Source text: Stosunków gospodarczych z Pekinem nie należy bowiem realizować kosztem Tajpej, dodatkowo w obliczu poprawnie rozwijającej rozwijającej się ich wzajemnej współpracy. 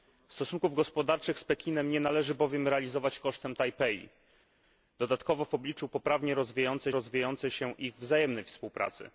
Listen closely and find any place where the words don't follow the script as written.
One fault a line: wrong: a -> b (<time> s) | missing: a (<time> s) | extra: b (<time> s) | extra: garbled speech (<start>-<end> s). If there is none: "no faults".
no faults